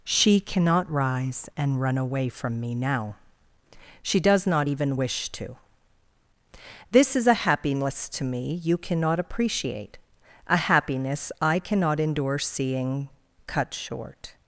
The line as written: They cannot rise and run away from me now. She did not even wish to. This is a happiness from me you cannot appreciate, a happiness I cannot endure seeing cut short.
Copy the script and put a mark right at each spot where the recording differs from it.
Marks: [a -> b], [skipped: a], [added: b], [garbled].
[They -> She] cannot rise and run away from me now. She [did -> does] not even wish to. This is a happiness [from -> to] me you cannot appreciate, a happiness I cannot endure seeing cut short.